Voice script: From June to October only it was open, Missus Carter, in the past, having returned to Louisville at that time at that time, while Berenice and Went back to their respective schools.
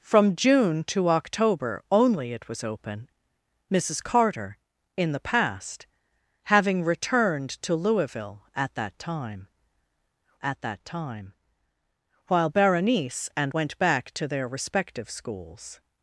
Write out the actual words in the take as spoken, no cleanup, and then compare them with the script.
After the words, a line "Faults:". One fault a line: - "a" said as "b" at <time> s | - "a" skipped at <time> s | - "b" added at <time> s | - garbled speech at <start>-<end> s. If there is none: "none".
From June to October only it was open, Missus Carter, in the past, having returned to Louisville at that time at that time, while Berenice and Went back to their respective schools.
Faults:
none